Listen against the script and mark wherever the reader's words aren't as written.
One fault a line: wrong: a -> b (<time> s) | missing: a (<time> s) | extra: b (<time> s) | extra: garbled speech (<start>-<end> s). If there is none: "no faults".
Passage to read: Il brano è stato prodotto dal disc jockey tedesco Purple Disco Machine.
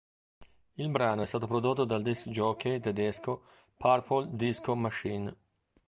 no faults